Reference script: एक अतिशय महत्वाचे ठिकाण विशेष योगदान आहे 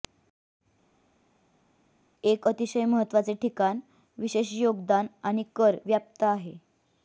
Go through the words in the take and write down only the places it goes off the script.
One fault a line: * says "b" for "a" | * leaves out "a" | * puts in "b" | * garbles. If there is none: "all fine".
* puts in "आणि कर व्याप्त"